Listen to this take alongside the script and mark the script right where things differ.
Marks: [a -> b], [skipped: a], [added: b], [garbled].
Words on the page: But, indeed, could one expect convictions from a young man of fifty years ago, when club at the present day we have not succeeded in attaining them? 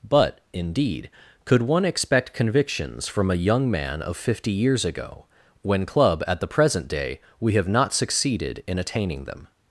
But, indeed, could one expect convictions from a young man of fifty years ago, when club at the present day we have not succeeded in attaining them?